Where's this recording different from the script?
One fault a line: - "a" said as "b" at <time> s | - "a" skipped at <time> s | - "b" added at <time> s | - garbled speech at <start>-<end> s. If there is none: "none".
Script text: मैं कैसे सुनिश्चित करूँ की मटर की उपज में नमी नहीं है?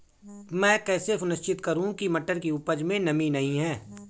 none